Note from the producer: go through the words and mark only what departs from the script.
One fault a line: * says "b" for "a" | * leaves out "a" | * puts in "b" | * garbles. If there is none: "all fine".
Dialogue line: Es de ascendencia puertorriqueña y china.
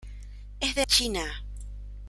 * leaves out "ascendencia puertorriqueña y"